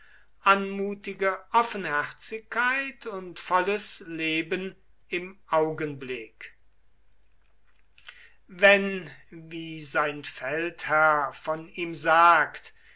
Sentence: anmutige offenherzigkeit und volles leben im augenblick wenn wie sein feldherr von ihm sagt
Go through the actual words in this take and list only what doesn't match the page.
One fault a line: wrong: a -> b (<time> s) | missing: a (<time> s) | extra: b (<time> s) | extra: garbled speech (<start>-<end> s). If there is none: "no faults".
no faults